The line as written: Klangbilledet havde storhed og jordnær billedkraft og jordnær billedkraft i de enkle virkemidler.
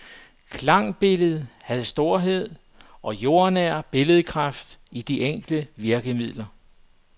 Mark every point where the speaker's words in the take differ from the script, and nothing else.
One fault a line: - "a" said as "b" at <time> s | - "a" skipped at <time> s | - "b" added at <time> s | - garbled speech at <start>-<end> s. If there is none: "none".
- "og jordnær billedkraft" skipped at 4.8 s